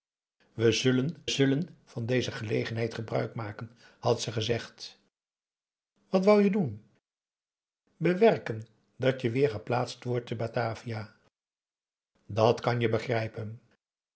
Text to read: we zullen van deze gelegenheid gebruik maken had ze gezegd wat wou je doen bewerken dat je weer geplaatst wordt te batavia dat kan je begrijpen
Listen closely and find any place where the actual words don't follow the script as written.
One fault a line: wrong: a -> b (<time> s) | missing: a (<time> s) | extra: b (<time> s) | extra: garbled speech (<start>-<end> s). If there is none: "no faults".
extra: zullen (1.3 s)